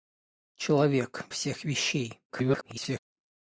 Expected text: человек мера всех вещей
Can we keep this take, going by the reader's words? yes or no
no